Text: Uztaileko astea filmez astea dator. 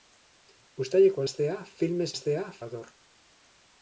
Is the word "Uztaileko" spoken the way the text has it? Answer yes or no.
yes